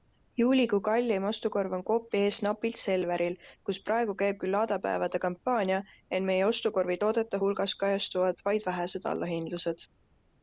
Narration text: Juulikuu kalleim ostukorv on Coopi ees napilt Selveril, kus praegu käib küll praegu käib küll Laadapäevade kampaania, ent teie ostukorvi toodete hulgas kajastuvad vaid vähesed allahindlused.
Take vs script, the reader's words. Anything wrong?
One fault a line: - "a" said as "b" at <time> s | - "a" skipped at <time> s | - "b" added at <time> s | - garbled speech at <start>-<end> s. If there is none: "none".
- "praegu käib küll" skipped at 4.6 s
- "teie" said as "meie" at 6.3 s